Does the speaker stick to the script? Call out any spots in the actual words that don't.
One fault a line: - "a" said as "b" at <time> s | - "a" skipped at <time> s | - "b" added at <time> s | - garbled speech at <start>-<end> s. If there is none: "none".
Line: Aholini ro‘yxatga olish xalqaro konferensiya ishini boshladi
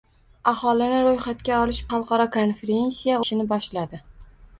none